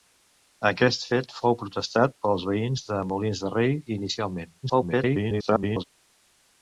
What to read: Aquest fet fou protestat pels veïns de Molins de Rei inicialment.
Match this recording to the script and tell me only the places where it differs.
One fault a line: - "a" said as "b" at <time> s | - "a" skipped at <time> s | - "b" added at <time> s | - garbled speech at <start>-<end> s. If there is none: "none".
- garbled speech at 4.6-5.8 s